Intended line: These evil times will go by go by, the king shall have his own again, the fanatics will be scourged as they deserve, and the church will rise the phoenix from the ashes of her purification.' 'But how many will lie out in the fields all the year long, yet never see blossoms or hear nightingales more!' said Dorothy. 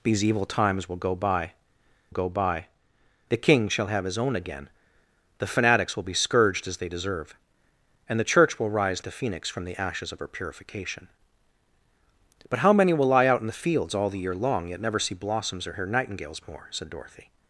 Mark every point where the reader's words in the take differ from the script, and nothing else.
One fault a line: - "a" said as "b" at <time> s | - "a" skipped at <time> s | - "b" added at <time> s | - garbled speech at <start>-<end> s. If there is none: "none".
none